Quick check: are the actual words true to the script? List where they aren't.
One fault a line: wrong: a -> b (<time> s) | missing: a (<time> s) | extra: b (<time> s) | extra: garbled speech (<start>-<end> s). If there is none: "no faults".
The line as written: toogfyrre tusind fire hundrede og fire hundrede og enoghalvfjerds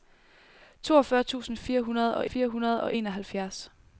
no faults